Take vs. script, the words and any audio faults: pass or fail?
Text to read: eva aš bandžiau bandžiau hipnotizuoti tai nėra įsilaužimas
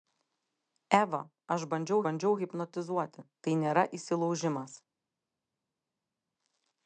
pass